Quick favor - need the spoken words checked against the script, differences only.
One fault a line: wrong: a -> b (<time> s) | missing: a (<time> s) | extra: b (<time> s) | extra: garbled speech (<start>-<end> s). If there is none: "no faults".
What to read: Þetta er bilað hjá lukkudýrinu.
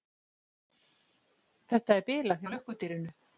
no faults